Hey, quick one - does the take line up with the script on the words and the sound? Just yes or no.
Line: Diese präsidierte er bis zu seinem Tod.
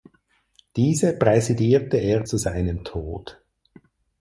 no